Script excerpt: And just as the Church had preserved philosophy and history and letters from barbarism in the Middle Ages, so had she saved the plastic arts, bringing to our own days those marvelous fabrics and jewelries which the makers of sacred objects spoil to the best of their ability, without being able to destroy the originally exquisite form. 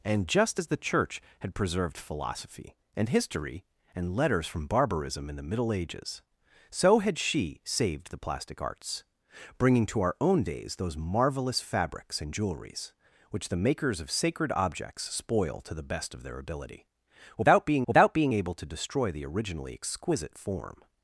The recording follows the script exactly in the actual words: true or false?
false